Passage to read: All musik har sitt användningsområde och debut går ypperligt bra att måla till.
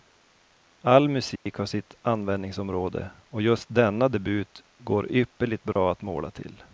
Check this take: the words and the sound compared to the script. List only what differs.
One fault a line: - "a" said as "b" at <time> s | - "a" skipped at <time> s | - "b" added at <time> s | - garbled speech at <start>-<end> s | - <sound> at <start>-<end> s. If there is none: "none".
- dropout at 1.4-1.5 s
- "just denna" added at 3.4 s
- dropout at 5.7-5.8 s